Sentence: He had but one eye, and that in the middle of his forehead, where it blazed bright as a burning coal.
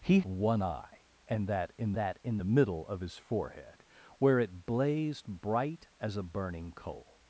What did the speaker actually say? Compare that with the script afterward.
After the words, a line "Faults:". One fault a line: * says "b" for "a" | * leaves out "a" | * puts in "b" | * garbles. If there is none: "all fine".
He one eye, and that in that in the middle of his forehead, where it blazed bright as a burning coal.
Faults:
* leaves out "had but"
* puts in "that in"